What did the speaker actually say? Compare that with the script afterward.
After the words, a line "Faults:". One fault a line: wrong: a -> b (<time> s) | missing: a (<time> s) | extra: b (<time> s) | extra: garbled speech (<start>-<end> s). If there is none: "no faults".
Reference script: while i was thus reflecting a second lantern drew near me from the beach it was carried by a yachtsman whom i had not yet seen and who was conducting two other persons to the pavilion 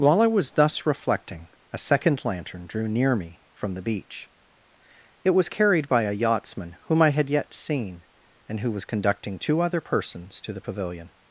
while i was thus reflecting a second lantern drew near me from the beach it was carried by a yachtsman whom i had yet seen and who was conducting two other persons to the pavilion
Faults:
missing: not (7.3 s)